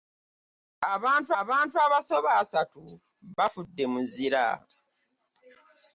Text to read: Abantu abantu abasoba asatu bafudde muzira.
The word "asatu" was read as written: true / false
true